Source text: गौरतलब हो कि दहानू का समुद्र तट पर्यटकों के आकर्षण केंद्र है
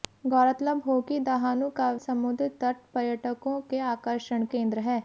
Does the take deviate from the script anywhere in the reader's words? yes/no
no